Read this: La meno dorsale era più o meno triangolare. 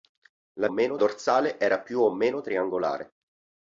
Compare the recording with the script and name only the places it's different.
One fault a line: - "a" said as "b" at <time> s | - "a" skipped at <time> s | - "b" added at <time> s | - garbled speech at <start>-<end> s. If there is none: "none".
none